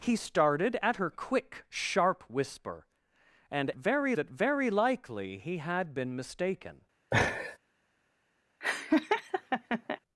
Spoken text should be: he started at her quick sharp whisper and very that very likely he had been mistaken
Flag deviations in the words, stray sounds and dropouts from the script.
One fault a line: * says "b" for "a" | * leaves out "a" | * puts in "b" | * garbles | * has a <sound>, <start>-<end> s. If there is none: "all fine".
* has a laugh, 7.1-7.6 s
* has a laugh, 8.6-10.0 s